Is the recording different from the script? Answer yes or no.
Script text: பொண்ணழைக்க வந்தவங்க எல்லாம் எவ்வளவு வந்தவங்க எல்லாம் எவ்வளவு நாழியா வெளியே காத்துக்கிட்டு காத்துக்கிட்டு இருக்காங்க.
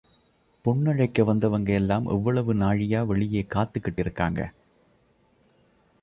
yes